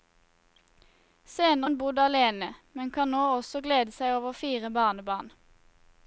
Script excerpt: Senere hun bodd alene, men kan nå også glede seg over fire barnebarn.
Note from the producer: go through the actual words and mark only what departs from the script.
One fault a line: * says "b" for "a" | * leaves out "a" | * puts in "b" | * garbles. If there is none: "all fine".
all fine